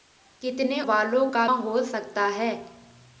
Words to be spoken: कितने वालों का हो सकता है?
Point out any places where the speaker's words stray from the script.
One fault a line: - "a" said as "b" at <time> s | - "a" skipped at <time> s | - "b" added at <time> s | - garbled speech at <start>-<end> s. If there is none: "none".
none